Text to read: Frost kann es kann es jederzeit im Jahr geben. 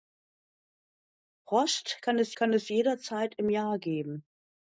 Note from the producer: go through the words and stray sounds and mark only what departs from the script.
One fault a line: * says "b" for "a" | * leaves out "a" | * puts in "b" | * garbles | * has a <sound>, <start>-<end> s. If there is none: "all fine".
all fine